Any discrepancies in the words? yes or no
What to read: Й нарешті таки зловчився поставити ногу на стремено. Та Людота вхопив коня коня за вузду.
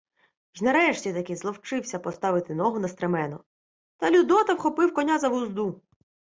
yes